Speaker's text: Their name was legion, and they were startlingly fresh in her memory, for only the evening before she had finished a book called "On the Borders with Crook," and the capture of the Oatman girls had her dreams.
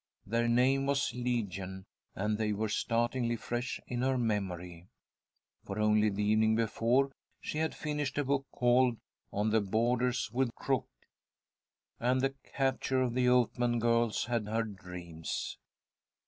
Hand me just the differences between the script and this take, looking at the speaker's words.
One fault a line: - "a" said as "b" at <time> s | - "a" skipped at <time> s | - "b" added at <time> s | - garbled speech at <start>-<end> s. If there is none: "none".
none